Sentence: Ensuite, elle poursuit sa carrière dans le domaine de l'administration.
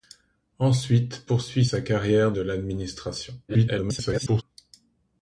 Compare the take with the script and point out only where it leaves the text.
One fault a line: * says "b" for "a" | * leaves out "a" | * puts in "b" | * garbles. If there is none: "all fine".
* leaves out "elle"
* leaves out "dans le domaine"
* garbles